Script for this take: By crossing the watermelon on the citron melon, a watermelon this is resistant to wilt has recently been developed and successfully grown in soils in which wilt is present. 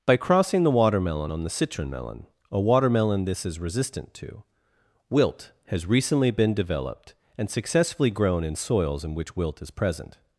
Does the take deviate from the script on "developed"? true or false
false